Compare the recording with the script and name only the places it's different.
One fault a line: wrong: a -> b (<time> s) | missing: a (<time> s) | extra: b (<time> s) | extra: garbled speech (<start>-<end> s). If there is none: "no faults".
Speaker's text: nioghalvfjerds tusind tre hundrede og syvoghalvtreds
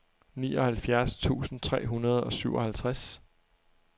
no faults